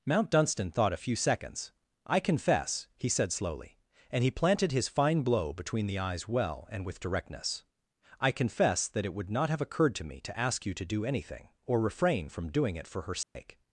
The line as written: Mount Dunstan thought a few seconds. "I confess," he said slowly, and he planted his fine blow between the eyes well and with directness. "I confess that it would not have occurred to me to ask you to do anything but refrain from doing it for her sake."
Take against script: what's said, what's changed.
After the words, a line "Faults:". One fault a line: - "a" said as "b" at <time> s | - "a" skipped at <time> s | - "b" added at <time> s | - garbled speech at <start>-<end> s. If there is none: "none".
Mount Dunstan thought a few seconds. "I confess," he said slowly, and he planted his fine blow between the eyes well and with directness. "I confess that it would not have occurred to me to ask you to do anything or refrain from doing it for her sake."
Faults:
- "but" said as "or" at 11.6 s